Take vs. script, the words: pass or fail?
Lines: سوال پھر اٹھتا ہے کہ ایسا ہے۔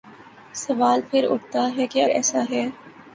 pass